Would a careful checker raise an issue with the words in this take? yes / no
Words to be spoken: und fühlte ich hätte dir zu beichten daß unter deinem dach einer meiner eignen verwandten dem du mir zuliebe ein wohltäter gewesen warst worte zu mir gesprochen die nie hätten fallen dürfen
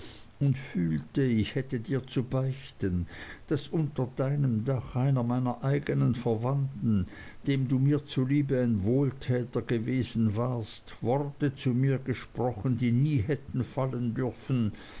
no